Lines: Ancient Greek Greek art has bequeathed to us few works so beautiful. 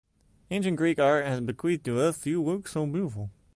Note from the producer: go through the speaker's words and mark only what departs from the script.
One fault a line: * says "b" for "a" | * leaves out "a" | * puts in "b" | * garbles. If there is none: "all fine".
* leaves out "Greek"